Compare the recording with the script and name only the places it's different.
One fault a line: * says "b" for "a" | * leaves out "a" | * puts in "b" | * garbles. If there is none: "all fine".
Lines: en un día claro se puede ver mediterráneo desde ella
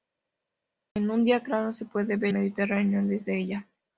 all fine